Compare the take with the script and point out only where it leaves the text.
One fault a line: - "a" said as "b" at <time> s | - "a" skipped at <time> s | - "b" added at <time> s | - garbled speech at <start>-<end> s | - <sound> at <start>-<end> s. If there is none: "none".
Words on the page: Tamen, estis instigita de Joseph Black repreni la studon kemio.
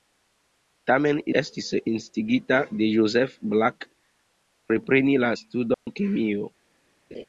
- dropout at 5.7-5.9 s
- laugh at 7.1-7.2 s